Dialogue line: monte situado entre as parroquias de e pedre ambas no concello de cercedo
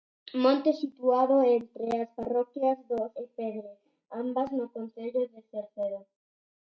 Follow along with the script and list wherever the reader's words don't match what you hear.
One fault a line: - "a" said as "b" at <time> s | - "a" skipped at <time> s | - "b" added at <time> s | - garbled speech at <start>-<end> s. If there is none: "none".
none